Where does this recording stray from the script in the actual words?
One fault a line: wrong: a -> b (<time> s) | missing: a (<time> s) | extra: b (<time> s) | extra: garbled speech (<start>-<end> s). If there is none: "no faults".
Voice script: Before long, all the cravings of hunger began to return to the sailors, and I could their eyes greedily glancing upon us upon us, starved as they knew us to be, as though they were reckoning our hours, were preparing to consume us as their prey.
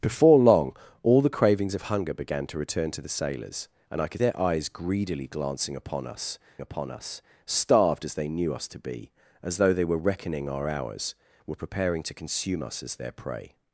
no faults